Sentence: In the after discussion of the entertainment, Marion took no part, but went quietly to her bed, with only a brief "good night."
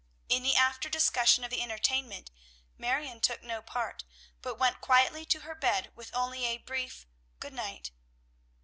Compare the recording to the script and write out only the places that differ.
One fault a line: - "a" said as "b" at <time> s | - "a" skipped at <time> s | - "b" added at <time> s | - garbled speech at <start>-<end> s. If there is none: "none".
none